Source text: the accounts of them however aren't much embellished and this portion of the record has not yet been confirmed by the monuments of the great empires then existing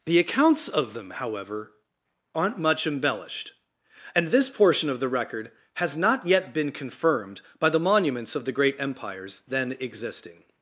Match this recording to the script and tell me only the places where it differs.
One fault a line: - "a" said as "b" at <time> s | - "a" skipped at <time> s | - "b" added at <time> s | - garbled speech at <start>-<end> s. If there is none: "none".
none